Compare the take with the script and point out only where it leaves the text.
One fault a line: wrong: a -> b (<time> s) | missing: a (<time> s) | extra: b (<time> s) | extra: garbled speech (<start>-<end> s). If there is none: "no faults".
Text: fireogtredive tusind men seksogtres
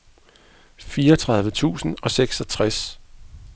wrong: men -> og (2.0 s)